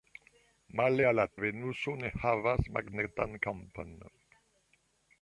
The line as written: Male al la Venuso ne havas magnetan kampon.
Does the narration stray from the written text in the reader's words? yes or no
no